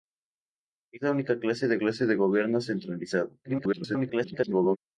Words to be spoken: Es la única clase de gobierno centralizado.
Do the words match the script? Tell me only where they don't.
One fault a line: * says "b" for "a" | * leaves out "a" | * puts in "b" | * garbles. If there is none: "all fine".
* puts in "clase de"
* garbles